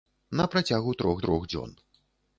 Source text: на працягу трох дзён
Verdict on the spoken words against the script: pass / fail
fail